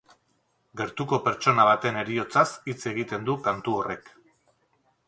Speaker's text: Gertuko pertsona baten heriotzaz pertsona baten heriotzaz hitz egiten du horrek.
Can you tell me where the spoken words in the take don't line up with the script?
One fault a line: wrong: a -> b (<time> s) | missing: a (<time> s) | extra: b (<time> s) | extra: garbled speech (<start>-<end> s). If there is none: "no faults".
missing: pertsona baten heriotzaz (2.5 s)
extra: kantu (3.5 s)